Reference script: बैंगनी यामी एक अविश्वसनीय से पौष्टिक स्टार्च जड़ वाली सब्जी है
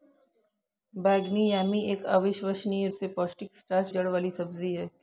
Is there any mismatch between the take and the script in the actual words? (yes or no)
no